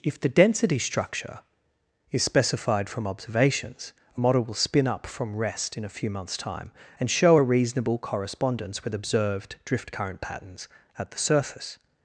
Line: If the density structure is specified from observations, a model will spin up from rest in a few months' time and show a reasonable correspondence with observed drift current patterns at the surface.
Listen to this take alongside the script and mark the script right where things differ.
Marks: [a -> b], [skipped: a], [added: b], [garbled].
If the density structure is specified from observations, a model will spin up from rest in a few months' time and show a reasonable correspondence with observed drift current patterns at the surface.